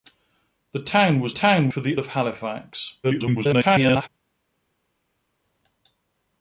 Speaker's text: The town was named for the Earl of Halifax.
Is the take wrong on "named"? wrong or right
wrong